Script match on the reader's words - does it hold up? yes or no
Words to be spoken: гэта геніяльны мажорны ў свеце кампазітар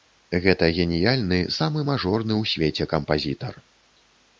no